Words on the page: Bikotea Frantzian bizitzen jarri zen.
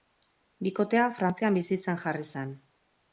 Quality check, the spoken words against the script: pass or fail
pass